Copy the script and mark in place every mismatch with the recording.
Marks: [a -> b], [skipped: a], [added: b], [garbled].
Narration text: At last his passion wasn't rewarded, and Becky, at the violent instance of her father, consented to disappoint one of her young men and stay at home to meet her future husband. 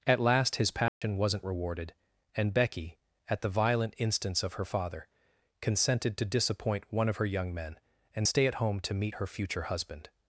At last his passion wasn't rewarded, and Becky, at the violent instance of her father, consented to disappoint one of her young men and stay at home to meet her future husband.